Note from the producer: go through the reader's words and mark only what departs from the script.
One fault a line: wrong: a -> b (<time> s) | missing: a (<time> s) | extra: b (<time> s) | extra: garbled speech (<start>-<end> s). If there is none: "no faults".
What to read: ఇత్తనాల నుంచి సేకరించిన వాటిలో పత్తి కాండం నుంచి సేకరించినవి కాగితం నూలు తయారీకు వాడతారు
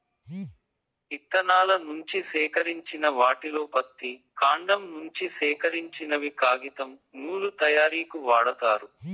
no faults